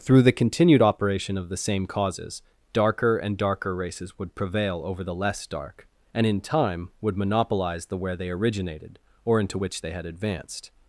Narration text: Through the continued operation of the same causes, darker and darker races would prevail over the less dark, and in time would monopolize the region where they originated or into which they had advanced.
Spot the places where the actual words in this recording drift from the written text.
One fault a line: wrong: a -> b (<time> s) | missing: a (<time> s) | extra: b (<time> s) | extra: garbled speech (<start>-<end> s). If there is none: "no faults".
missing: region (8.0 s)